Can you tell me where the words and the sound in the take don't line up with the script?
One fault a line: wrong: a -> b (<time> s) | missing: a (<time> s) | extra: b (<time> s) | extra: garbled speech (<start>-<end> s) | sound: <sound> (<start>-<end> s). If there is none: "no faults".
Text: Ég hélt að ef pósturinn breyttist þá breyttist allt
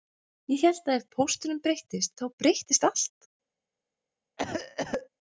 sound: cough (4.4-5.1 s)